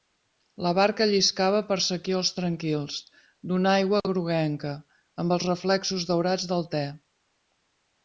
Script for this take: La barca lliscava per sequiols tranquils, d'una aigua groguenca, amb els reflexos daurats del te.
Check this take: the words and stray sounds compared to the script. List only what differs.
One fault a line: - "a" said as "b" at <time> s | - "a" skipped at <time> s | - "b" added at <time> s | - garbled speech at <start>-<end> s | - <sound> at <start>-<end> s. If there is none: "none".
none